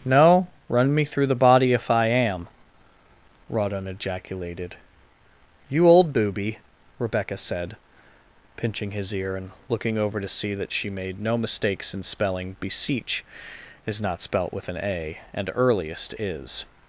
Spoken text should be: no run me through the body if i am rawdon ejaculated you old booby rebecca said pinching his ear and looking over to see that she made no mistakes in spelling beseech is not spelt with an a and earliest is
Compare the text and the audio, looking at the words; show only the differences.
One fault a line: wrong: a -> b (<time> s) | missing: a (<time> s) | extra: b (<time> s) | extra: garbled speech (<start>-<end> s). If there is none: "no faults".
no faults